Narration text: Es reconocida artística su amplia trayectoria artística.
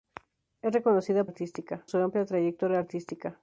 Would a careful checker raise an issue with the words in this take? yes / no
no